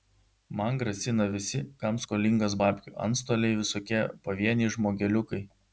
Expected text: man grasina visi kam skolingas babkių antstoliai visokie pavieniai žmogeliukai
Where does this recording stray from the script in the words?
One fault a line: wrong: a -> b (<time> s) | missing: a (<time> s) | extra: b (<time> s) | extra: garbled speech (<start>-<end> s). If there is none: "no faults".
no faults